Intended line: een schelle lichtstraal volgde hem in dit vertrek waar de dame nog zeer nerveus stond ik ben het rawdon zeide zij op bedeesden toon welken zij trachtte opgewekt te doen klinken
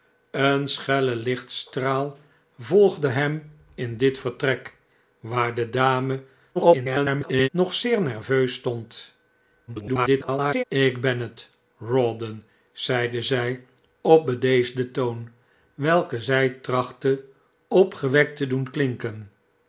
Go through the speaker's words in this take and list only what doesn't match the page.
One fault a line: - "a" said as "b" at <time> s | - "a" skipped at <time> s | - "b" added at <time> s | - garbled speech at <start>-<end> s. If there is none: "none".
- garbled speech at 6.5-7.5 s
- garbled speech at 9.7-10.6 s